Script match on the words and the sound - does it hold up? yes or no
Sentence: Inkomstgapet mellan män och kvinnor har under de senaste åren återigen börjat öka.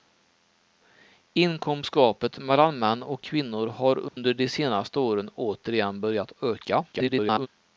no